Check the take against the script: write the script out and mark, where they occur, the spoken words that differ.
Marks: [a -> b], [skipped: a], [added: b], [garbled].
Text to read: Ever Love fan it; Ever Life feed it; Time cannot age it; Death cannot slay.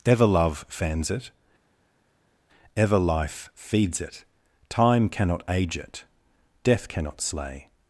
Ever Love [fan -> fans] it; Ever Life [feed -> feeds] it; Time cannot age it; Death cannot slay.